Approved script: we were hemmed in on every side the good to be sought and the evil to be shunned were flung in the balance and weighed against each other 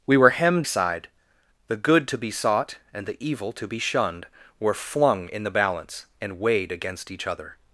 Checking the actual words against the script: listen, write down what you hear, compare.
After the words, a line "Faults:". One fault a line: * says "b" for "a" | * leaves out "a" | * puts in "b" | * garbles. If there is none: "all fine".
we were hemmed side the good to be sought and the evil to be shunned were flung in the balance and weighed against each other
Faults:
* leaves out "in on every"